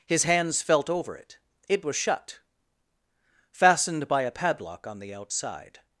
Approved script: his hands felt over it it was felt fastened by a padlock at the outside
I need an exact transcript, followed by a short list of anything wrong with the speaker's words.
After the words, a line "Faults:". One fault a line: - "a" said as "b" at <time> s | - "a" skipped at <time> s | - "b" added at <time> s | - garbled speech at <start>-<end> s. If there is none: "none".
his hands felt over it it was shut fastened by a padlock on the outside
Faults:
- "felt" said as "shut" at 1.9 s
- "at" said as "on" at 4.9 s